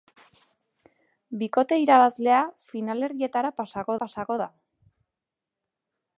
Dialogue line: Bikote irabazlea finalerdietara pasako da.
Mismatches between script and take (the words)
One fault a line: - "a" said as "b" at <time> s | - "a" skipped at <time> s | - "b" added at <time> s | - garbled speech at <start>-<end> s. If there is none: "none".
- "pasako" added at 4.0 s